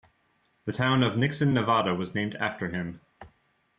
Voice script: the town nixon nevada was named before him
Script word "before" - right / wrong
wrong